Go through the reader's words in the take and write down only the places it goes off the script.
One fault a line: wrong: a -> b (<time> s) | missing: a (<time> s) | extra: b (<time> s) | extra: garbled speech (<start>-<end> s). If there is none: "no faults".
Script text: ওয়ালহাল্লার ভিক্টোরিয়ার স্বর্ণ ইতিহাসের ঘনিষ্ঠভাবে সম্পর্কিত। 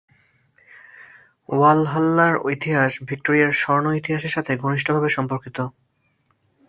extra: ইতিহাস (2.5 s)
extra: সাথে (4.3 s)